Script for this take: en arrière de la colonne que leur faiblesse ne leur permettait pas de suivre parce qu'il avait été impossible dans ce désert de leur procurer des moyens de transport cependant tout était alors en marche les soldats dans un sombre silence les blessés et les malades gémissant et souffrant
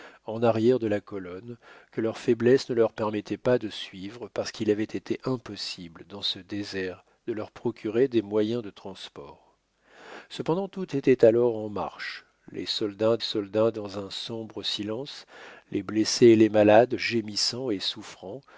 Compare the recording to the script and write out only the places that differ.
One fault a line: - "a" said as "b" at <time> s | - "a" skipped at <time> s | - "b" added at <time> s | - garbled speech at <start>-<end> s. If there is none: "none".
- "soldats" added at 13.2 s